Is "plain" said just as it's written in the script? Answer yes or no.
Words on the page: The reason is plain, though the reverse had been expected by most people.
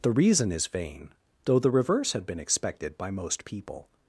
no